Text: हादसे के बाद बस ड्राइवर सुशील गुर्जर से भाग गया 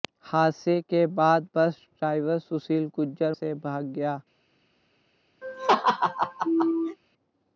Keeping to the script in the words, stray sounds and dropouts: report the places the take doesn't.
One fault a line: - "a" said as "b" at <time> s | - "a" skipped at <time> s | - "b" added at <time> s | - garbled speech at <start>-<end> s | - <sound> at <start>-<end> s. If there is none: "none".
- laugh at 5.4-7.0 s